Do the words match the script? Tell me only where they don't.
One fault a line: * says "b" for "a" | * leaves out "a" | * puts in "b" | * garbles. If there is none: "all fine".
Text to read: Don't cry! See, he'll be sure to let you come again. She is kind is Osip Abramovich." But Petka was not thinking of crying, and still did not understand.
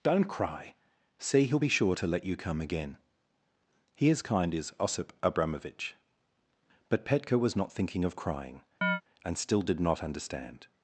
* says "He" for "She"